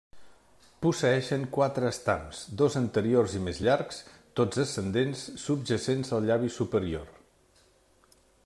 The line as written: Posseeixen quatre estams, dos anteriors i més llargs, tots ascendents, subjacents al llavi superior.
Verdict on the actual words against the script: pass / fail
pass